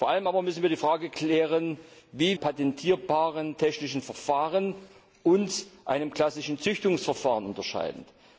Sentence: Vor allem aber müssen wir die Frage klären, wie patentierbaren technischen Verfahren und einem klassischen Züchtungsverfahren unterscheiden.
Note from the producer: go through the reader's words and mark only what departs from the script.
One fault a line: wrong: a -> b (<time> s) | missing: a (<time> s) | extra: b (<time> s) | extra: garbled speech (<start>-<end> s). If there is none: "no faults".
no faults